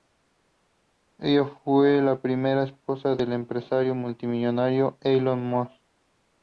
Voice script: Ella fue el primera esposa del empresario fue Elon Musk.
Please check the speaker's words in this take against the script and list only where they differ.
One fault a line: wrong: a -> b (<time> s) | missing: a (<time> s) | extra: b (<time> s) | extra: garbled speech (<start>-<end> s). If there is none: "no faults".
wrong: el -> la (2.0 s)
wrong: fue -> multimillonario (4.0 s)